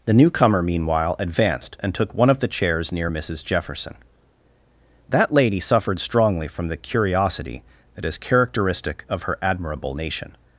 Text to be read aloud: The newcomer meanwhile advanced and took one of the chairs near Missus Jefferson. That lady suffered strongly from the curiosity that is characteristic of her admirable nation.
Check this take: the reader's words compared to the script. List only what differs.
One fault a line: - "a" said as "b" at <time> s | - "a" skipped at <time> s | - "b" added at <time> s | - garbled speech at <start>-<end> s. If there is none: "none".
none